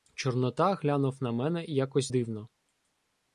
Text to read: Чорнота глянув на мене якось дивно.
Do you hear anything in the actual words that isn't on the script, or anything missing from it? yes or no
no